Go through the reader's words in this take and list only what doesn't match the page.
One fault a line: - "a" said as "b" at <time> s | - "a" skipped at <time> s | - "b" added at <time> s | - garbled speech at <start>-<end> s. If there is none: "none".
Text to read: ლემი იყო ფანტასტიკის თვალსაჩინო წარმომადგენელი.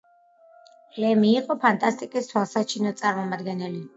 none